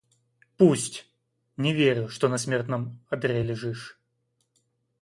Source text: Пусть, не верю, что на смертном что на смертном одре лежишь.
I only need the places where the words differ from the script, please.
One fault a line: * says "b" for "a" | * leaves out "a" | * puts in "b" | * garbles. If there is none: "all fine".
* leaves out "что на смертном"